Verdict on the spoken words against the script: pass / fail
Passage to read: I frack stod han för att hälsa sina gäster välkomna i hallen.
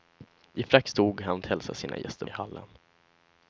fail